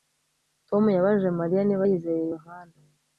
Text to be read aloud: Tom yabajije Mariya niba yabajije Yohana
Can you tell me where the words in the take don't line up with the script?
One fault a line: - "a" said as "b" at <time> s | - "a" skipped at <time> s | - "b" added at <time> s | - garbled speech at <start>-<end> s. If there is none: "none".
- "yabajije" said as "yizeye" at 1.9 s